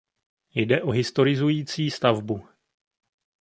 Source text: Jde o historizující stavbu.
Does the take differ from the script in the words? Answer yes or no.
no